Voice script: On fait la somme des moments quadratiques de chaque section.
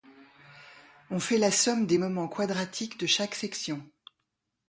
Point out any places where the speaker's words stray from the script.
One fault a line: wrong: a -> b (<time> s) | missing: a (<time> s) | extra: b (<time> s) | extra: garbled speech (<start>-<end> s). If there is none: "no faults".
no faults